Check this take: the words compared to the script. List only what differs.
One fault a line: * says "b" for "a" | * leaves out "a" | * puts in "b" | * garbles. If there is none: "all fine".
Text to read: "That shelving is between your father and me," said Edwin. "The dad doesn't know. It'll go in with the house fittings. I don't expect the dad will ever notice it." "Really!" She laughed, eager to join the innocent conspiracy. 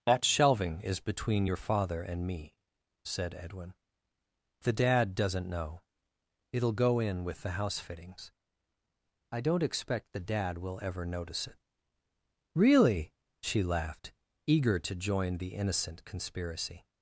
all fine